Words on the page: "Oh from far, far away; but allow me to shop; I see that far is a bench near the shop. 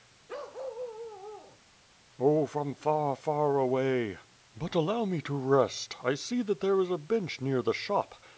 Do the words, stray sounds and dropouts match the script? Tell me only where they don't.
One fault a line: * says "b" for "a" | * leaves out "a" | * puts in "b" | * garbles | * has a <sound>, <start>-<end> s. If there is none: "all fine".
* has a bark, 0.3-1.6 s
* says "rest" for "shop"
* says "there" for "far"